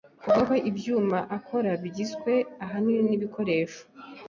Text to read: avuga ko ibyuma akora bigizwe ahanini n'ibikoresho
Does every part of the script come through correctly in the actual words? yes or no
yes